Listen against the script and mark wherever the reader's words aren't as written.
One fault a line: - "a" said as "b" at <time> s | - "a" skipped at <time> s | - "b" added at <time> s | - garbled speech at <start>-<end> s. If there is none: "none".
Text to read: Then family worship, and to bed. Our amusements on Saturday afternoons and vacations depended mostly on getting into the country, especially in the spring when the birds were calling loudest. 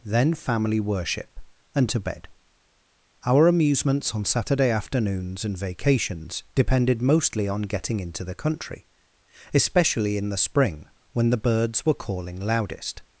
none